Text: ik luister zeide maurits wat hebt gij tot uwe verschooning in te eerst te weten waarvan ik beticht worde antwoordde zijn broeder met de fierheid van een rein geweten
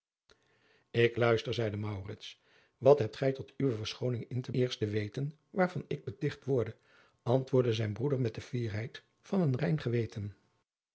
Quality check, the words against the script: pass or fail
pass